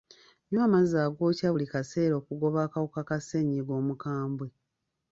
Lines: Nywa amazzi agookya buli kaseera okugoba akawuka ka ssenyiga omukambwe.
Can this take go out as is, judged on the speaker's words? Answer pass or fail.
pass